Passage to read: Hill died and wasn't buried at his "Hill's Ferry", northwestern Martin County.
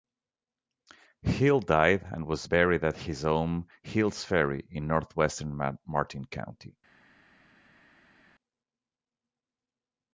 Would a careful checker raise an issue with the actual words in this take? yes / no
yes